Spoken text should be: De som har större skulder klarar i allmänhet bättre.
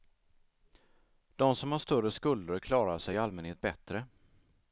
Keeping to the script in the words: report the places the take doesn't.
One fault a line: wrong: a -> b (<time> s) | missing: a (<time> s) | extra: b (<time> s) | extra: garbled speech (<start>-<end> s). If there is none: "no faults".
extra: sig (3.0 s)